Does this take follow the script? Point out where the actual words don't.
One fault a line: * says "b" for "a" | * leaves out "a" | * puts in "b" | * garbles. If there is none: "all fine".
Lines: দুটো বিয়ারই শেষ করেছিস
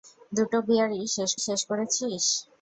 * puts in "শেষ"